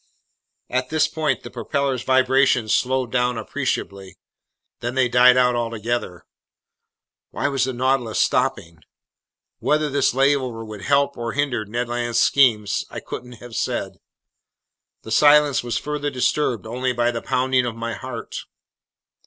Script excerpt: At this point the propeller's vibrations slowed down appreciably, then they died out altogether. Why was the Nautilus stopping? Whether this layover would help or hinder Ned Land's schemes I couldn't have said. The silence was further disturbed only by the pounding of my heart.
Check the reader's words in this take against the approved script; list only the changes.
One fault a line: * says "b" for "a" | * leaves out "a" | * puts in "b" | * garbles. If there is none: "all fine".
all fine